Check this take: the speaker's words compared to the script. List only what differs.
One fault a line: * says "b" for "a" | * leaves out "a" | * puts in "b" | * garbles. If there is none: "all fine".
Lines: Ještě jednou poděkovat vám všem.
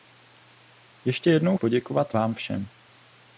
all fine